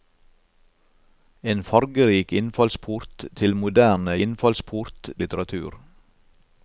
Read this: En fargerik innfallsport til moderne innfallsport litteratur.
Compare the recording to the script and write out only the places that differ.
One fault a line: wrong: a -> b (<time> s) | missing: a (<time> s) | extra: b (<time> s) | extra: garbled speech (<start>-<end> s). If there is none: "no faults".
no faults